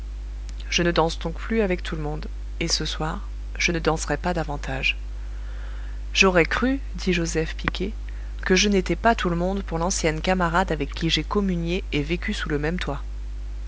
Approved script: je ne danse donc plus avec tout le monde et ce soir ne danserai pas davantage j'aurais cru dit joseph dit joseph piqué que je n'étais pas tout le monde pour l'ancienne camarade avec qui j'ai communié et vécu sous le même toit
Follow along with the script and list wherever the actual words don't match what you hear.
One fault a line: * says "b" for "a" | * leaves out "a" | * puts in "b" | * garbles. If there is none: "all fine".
* puts in "je"
* leaves out "dit joseph"